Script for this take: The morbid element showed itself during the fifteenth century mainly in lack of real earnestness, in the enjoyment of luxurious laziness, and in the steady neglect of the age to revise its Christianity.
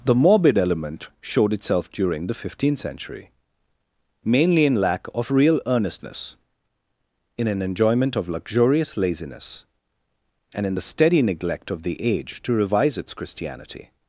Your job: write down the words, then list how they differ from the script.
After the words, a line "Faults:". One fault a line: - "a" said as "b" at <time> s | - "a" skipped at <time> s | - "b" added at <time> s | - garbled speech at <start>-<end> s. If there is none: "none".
The morbid element showed itself during the fifteenth century mainly in lack of real earnestness, in an enjoyment of luxurious laziness, and in the steady neglect of the age to revise its Christianity.
Faults:
- "the" said as "an" at 7.5 s